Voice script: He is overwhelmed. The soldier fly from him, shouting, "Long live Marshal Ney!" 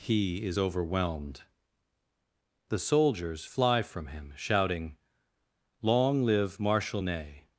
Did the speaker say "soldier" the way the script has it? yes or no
no